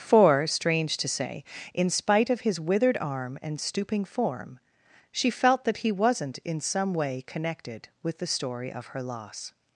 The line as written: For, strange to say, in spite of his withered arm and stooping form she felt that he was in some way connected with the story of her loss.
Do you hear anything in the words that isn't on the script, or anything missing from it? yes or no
yes